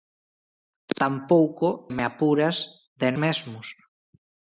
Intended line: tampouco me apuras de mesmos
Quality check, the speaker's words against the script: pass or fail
pass